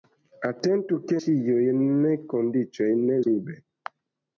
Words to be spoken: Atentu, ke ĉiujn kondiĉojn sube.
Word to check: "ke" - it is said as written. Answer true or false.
true